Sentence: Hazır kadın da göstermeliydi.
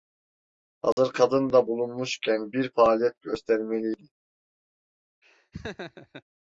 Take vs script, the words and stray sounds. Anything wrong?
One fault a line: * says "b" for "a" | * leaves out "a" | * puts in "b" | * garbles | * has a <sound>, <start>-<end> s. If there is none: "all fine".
* has a dropout, 0.9-1.0 s
* puts in "bulunmuşken bir faaliyet"
* has a laugh, 5.2-6.2 s